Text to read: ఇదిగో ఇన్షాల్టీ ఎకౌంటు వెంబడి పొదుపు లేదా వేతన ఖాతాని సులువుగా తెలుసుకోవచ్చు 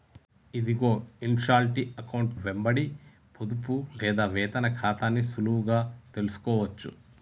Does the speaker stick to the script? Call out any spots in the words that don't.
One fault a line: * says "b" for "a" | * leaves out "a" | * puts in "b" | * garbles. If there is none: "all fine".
all fine